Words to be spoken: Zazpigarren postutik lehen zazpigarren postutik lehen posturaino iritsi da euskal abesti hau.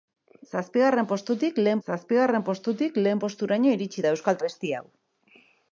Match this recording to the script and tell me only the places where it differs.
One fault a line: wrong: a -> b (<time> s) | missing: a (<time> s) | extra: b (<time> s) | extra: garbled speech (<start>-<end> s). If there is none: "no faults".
no faults